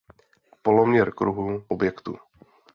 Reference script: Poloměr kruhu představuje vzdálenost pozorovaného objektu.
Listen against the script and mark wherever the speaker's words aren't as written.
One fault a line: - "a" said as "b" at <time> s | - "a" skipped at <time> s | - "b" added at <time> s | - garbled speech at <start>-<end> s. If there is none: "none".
- "představuje vzdálenost pozorovaného" skipped at 1.6 s